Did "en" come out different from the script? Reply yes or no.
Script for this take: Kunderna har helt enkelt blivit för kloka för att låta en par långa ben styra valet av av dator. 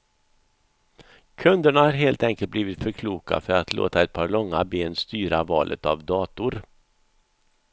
yes